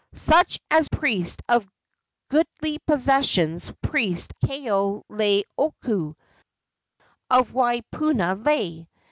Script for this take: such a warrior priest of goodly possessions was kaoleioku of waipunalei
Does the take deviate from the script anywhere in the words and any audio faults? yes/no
yes